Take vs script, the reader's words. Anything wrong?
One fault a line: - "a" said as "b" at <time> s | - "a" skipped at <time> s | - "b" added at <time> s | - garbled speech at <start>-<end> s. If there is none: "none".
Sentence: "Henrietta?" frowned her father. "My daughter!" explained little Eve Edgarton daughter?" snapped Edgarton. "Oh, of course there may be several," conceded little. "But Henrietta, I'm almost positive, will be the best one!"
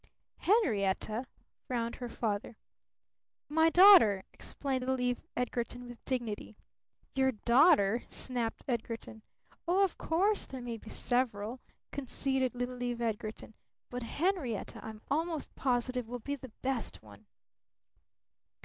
- "with dignity Your" added at 5.9 s
- "Eve Edgarton" added at 12.8 s